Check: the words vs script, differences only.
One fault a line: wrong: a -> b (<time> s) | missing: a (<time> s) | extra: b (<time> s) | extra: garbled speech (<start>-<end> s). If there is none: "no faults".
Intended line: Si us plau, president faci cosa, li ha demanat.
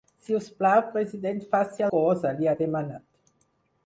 no faults